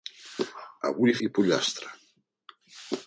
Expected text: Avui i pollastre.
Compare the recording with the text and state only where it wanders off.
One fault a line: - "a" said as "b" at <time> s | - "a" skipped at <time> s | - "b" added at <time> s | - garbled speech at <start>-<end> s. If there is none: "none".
none